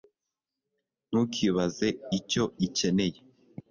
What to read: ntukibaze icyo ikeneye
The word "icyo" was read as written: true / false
true